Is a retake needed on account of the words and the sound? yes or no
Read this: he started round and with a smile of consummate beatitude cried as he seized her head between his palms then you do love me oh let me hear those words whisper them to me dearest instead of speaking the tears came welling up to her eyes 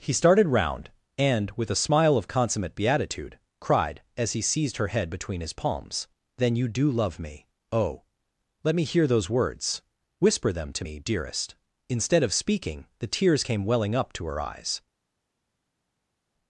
no